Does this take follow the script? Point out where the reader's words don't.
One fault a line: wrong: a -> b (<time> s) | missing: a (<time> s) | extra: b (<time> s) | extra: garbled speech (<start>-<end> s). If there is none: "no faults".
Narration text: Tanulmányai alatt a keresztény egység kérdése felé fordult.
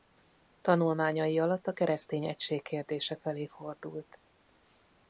no faults